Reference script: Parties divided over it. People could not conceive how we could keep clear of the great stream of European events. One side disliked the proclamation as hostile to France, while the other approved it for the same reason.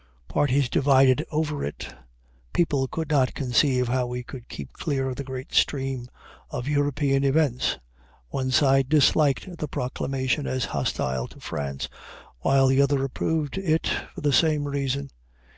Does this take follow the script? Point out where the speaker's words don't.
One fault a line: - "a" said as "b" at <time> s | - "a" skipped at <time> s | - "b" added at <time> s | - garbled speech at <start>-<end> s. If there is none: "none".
none